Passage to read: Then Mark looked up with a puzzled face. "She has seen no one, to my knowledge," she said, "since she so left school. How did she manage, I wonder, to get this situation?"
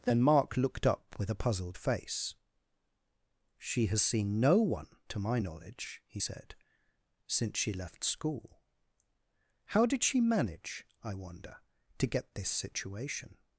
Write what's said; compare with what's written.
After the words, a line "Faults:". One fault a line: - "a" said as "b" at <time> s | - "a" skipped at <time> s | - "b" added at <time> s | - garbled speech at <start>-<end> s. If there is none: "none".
Then Mark looked up with a puzzled face. "She has seen no one, to my knowledge," he said, "since she left school. How did she manage, I wonder, to get this situation?"
Faults:
- "she" said as "he" at 6.1 s
- "so" skipped at 7.7 s